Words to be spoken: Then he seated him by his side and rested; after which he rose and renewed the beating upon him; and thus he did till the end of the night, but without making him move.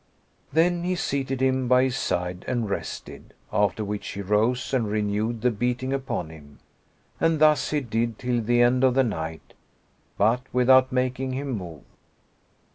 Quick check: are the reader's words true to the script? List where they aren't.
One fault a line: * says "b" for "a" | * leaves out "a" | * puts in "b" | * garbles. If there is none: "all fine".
all fine